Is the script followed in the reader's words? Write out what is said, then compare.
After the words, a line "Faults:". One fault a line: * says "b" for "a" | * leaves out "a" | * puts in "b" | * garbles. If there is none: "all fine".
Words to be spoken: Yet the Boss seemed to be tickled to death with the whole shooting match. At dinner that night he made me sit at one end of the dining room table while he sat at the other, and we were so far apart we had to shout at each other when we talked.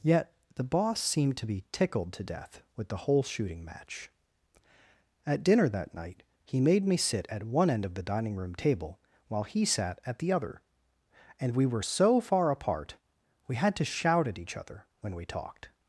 Yet the Boss seemed to be tickled to death with the whole shooting match. At dinner that night he made me sit at one end of the dining room table while he sat at the other, and we were so far apart we had to shout at each other when we talked.
Faults:
all fine